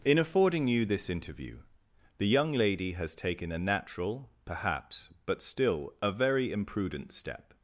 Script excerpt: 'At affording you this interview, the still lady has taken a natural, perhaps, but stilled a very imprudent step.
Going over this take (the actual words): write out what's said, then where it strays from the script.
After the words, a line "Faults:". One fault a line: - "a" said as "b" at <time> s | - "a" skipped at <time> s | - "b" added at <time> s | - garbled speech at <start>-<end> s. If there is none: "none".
'In affording you this interview, the young lady has taken a natural, perhaps, but still a very imprudent step.
Faults:
- "At" said as "In" at 0.0 s
- "still" said as "young" at 2.3 s
- "stilled" said as "still" at 5.4 s